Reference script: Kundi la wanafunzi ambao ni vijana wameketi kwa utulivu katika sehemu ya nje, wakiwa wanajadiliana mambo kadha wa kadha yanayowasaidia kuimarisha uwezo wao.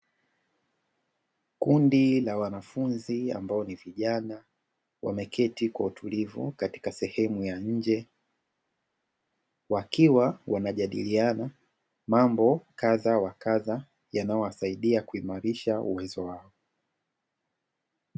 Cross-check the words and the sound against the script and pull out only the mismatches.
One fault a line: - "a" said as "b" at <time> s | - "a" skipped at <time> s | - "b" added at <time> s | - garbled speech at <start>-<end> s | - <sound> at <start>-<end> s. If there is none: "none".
none